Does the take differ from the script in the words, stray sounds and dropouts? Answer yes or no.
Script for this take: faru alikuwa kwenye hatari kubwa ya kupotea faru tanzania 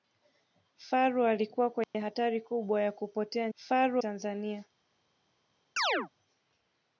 yes